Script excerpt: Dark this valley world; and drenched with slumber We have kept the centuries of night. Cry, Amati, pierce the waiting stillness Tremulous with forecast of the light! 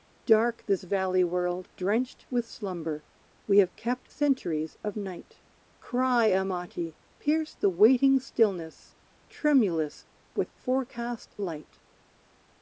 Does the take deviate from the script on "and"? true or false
true